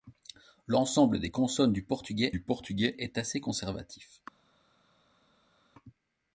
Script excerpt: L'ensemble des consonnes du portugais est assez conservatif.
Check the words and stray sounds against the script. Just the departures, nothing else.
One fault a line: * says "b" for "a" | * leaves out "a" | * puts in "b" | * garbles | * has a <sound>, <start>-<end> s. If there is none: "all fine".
* puts in "du portugais"